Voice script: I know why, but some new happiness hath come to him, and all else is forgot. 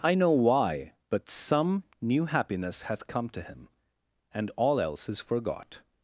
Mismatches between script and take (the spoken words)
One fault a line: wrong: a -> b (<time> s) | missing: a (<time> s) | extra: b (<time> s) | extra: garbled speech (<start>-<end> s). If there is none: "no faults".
no faults